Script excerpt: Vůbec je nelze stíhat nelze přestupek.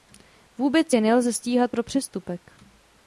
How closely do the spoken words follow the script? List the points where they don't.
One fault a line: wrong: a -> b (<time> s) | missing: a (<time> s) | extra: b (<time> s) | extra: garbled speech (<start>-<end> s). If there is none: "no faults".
wrong: nelze -> pro (1.7 s)